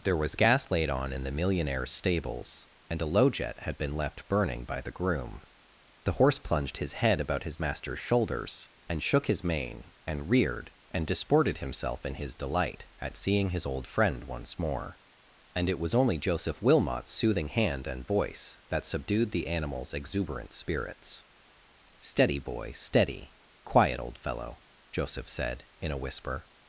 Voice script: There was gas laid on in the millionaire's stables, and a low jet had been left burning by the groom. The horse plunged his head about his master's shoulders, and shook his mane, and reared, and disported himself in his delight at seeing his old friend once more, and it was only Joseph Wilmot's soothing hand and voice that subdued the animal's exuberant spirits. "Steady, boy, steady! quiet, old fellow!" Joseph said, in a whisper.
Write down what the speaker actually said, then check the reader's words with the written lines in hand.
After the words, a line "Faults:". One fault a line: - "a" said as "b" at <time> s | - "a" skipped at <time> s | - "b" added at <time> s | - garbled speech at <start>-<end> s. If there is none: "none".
There was gas laid on in the millionaire's stables, and a low jet had been left burning by the groom. The horse plunged his head about his master's shoulders, and shook his mane, and reared, and disported himself in his delight at seeing his old friend once more, and it was only Joseph Wilmot's soothing hand and voice that subdued the animal's exuberant spirits. "Steady, boy, steady! quiet, old fellow!" Joseph said, in a whisper.
Faults:
none